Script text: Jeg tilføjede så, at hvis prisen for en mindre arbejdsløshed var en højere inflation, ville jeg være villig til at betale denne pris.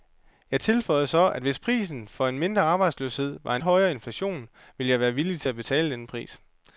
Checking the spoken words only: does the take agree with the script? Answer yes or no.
yes